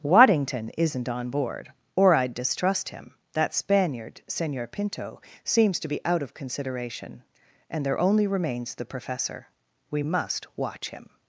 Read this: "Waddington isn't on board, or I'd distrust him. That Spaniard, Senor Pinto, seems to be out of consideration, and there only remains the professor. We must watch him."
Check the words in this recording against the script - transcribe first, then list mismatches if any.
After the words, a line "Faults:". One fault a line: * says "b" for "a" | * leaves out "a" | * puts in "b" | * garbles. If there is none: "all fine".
"Waddington isn't on board, or I'd distrust him. That Spaniard, Senor Pinto, seems to be out of consideration, and there only remains the professor. We must watch him."
Faults:
all fine